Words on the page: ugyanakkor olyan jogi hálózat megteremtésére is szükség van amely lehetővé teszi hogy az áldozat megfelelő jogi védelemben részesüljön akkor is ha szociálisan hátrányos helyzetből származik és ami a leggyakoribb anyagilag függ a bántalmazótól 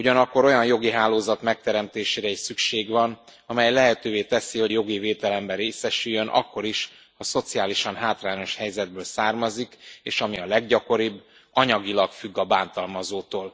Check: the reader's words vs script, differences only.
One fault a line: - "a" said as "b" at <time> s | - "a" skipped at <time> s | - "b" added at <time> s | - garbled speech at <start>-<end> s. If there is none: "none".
- "az áldozat megfelelő" skipped at 4.7 s